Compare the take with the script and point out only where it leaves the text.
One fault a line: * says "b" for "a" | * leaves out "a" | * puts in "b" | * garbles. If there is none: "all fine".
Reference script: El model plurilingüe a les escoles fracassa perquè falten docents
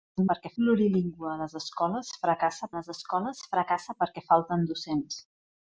* says "perquè" for "model"
* puts in "les escoles fracassa"